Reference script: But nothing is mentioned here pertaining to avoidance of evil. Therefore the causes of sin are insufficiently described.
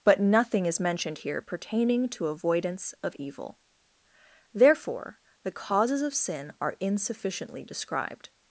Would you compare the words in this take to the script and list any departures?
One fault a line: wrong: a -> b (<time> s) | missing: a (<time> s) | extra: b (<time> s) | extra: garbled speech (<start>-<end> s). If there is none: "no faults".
no faults